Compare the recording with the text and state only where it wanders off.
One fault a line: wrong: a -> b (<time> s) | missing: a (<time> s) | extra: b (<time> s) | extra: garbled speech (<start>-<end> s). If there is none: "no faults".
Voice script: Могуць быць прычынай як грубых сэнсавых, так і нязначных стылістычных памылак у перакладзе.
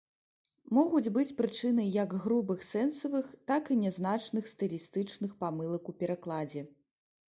no faults